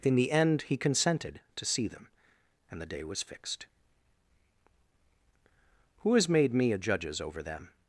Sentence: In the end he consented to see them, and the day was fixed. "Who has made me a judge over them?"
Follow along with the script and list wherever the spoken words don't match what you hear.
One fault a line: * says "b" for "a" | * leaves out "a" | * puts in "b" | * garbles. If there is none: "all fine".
* says "judges" for "judge"